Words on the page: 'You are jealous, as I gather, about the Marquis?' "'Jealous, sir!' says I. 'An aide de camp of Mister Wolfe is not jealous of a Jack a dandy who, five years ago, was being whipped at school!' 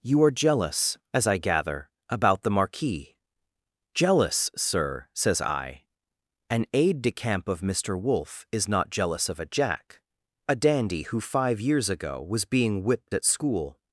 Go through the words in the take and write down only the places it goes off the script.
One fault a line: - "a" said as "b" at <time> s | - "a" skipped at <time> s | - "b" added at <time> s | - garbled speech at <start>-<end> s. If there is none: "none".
none